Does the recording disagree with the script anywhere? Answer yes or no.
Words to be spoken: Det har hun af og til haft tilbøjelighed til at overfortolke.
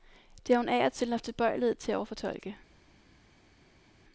no